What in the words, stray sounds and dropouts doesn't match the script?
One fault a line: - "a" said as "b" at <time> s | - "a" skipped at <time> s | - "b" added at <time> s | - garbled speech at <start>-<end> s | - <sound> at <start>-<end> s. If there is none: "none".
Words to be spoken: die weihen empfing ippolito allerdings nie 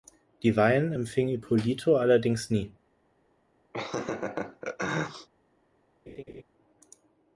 - laugh at 3.7-5.3 s
- laugh at 6.1-6.4 s